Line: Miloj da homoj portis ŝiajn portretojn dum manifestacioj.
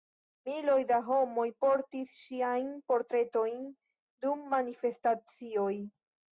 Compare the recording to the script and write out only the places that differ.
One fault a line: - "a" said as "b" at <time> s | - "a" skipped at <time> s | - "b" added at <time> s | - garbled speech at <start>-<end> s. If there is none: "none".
none